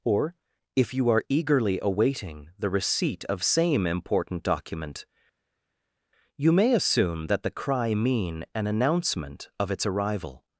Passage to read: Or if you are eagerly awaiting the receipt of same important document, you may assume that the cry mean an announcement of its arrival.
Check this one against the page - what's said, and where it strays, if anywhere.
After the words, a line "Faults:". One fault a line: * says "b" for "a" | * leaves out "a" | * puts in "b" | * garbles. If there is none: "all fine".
Or if you are eagerly awaiting the receipt of same important document, you may assume that the cry mean an announcement of its arrival.
Faults:
all fine